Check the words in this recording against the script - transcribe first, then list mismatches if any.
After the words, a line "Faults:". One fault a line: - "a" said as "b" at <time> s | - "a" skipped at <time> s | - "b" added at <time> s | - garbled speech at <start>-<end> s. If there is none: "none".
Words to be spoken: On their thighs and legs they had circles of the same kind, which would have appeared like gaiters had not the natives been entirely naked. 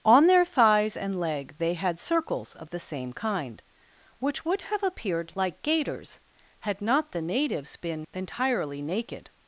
On their thighs and leg they had circles of the same kind, which would have appeared like gaiters had not the natives been entirely naked.
Faults:
- "legs" said as "leg" at 1.2 s